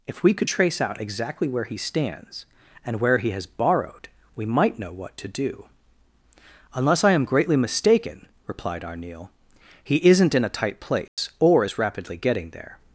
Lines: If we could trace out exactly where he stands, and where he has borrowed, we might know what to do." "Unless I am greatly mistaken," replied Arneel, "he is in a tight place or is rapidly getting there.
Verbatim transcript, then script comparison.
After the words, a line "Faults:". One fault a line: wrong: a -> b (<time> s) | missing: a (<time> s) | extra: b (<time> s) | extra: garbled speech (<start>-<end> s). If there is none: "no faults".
If we could trace out exactly where he stands, and where he has borrowed, we might know what to do." "Unless I am greatly mistaken," replied Arneel, "he isn't in a tight place or is rapidly getting there.
Faults:
wrong: is -> isn't (10.1 s)